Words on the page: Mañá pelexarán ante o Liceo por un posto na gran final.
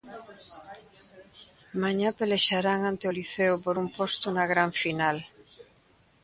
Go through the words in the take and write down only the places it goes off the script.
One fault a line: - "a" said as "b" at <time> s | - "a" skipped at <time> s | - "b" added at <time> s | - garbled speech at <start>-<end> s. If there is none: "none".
none